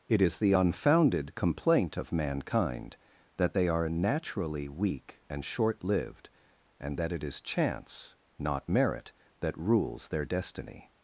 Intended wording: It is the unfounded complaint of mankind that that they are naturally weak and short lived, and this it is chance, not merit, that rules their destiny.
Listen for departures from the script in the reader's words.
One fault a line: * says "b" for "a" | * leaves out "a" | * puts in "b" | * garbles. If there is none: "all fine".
* leaves out "that"
* says "that" for "this"